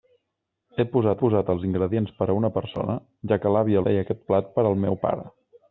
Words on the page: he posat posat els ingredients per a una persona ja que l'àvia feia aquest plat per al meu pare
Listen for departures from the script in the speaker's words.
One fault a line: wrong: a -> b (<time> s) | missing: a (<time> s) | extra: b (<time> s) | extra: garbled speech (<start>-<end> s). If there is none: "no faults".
no faults